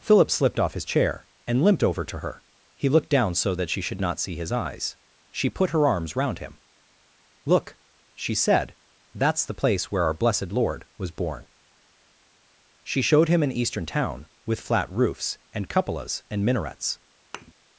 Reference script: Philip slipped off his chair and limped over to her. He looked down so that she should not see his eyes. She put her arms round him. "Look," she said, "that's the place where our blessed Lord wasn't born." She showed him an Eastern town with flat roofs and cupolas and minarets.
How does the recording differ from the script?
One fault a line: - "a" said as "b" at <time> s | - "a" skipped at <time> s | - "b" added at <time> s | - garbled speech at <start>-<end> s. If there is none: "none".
- "wasn't" said as "was" at 11.0 s